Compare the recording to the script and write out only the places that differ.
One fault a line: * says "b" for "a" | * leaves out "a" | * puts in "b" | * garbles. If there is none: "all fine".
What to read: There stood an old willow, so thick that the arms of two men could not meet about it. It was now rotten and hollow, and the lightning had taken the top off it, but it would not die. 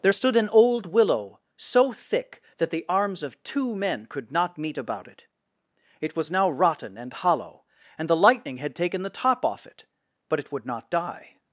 all fine